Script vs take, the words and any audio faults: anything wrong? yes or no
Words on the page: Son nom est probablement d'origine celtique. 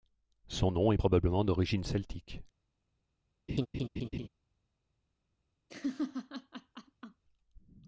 yes